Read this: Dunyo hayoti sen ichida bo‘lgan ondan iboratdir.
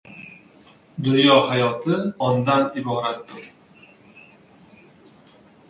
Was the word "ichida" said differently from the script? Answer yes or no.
yes